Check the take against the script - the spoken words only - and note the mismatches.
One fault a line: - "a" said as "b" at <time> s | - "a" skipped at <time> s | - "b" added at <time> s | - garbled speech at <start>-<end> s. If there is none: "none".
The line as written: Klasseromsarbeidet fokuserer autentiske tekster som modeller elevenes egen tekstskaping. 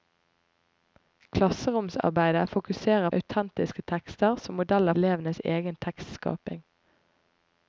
none